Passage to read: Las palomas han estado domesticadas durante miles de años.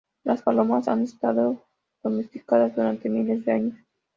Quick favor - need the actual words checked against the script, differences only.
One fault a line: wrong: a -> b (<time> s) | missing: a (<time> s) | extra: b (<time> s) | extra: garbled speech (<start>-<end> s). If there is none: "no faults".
no faults